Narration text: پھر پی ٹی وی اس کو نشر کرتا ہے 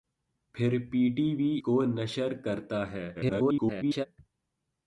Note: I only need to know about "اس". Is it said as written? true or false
false